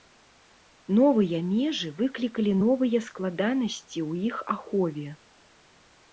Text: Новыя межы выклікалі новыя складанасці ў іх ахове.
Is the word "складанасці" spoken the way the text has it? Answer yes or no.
yes